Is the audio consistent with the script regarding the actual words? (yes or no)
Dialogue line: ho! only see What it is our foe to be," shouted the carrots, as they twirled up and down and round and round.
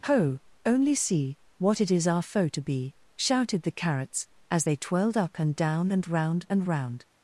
yes